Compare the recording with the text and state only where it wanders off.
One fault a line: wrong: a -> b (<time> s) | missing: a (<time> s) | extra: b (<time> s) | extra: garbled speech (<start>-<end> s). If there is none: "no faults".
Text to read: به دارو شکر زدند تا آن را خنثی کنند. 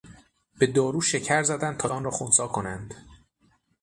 no faults